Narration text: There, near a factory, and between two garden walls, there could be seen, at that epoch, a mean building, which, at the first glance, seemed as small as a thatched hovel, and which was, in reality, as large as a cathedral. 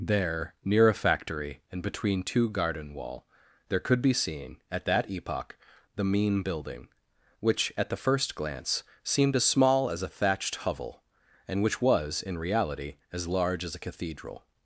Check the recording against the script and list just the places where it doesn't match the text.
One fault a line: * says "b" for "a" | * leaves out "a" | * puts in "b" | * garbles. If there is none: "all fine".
* says "wall" for "walls"
* says "the" for "a"